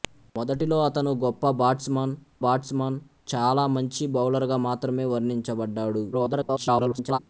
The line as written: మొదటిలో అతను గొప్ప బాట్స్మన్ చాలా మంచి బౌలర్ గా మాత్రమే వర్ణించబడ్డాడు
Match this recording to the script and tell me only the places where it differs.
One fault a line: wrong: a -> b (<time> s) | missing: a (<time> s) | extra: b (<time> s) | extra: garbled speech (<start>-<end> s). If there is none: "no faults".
extra: బాట్స్మన్ (2.4 s)
extra: garbled speech (6.1-7.2 s)